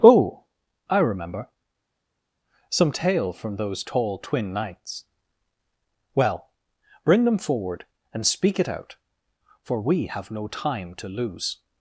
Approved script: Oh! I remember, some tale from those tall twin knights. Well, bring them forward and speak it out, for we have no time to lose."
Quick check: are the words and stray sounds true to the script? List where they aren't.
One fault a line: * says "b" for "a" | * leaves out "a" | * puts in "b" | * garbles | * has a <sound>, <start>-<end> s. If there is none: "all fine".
all fine